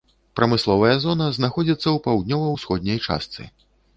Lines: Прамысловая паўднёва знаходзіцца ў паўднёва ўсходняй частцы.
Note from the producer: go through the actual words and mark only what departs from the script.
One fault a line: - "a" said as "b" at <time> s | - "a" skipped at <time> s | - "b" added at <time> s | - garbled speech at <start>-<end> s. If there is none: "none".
- "паўднёва" said as "зона" at 1.0 s